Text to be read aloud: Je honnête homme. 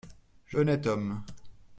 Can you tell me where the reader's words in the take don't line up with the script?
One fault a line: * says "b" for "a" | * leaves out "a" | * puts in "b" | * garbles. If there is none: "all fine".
all fine